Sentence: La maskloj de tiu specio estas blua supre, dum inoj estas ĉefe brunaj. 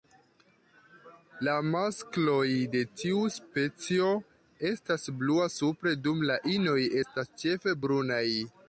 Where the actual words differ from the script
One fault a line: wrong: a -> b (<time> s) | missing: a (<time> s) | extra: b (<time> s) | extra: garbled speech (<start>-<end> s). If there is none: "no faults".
extra: la (6.3 s)